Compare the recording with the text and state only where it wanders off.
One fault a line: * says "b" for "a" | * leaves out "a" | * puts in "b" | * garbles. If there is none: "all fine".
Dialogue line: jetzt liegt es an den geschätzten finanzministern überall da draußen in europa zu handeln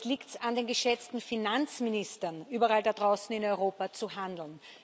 all fine